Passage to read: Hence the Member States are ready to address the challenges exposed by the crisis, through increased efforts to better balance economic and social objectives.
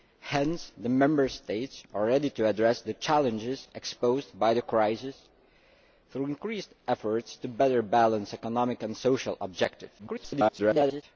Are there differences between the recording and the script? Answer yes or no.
yes